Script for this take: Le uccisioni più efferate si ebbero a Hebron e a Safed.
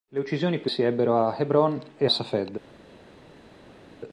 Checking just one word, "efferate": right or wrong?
wrong